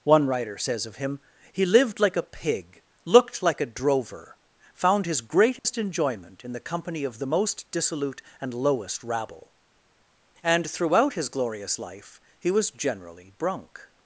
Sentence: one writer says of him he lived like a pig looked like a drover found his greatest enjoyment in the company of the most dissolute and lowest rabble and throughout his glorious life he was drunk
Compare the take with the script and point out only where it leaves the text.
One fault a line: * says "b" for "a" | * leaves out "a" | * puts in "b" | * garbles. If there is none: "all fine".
* puts in "generally"